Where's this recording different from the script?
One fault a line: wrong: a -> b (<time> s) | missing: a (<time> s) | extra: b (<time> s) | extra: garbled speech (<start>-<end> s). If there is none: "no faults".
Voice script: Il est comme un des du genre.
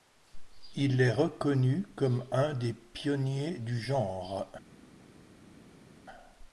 extra: reconnu (1.1 s)
extra: pionniers (2.7 s)